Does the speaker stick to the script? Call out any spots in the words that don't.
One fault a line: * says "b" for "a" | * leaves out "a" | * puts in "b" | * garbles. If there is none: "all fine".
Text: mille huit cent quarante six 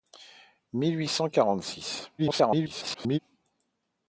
* garbles